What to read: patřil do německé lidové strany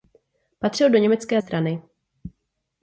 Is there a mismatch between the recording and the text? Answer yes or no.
yes